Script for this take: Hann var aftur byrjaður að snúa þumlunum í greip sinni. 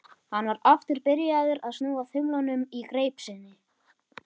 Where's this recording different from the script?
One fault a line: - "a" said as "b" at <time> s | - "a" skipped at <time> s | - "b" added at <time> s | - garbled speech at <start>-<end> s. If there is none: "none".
none